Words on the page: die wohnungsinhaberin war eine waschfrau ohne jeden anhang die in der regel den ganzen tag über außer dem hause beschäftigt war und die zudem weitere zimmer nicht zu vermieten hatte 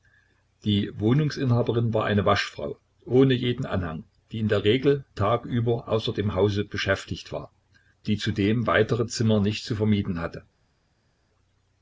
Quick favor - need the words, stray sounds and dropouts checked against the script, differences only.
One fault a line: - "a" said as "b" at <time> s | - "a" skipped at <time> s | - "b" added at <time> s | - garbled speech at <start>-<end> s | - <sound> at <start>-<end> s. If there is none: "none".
- "den ganzen" skipped at 5.0 s
- "und" skipped at 7.5 s